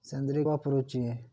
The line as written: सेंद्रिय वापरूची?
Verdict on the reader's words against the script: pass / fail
pass